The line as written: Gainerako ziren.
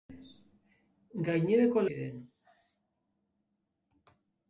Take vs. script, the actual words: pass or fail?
pass